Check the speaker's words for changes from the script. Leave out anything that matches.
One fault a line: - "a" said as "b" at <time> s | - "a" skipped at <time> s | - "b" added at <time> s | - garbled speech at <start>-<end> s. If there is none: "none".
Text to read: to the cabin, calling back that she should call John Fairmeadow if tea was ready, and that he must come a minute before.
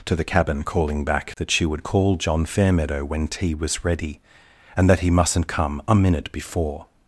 - "should" said as "would" at 1.6 s
- "if" said as "when" at 3.0 s
- "must" said as "mustn't" at 5.1 s